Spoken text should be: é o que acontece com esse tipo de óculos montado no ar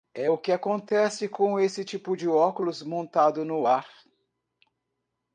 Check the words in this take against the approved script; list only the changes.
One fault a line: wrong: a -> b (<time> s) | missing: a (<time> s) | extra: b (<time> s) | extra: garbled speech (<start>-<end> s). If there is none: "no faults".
no faults